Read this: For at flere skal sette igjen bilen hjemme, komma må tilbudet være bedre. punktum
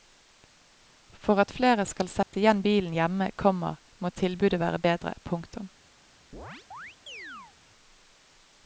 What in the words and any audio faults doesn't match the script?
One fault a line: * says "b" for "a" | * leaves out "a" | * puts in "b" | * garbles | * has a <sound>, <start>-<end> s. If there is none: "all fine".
* has a dropout, 2.2-2.3 s
* has a chirp, 6.3-7.6 s